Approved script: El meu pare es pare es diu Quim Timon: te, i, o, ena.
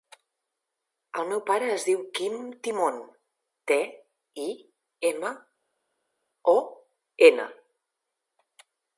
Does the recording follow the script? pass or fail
fail